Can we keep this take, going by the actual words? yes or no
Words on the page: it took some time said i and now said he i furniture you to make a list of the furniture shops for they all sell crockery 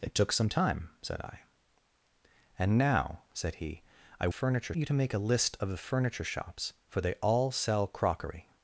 yes